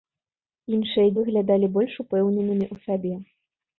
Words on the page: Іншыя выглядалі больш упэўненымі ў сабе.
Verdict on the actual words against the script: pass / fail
pass